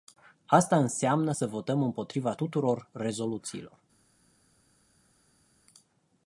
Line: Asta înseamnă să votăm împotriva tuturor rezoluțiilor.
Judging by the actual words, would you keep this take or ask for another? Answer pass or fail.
pass